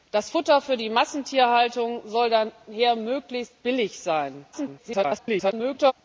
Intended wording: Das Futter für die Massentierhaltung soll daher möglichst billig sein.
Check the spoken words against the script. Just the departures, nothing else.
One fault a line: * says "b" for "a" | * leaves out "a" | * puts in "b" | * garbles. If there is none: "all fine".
* garbles